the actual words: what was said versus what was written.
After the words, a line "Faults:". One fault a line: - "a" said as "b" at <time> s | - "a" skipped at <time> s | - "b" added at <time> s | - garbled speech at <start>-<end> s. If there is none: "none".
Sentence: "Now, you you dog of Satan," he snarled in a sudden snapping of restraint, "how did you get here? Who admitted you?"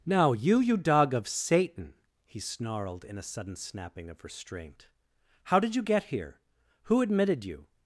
"Now, you you dog of Satan," he snarled in a sudden snapping of restraint, "how did you get here? Who admitted you?"
Faults:
none